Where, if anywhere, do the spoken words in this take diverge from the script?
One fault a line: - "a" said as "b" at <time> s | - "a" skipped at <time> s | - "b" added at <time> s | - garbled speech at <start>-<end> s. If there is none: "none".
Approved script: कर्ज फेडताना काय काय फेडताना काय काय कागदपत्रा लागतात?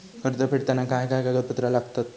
- "फेडताना काय काय" skipped at 1.2 s